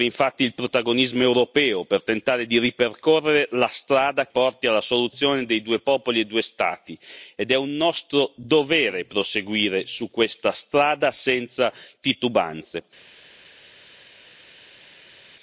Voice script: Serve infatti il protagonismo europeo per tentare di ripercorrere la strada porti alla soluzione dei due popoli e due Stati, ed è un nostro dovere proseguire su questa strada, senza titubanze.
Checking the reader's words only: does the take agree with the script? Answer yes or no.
yes